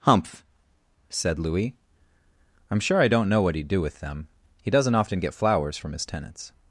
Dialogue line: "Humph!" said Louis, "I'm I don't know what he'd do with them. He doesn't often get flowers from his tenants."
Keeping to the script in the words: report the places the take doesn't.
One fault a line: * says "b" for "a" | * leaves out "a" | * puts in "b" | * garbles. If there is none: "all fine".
* puts in "sure"